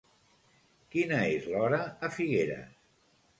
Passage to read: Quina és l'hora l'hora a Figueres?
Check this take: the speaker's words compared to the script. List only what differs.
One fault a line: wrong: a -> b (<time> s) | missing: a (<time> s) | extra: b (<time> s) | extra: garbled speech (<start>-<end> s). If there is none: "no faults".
missing: l'hora (1.8 s)